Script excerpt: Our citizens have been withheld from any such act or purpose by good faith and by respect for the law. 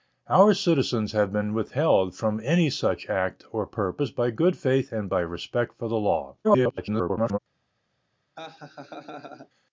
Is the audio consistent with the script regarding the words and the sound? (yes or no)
no